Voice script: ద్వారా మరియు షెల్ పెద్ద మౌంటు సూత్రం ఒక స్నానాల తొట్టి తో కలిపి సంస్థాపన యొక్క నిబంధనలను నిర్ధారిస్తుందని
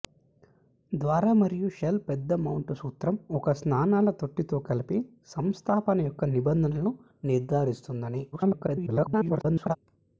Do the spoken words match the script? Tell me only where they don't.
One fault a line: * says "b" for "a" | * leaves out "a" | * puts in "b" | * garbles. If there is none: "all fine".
* garbles